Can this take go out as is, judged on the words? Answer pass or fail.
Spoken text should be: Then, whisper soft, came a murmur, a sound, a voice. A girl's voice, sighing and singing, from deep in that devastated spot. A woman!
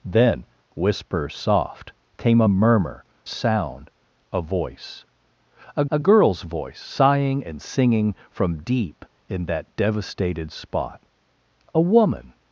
fail